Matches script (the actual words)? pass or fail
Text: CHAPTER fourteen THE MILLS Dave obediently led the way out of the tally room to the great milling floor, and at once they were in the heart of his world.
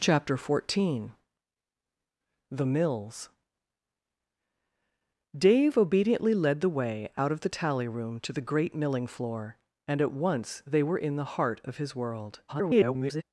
fail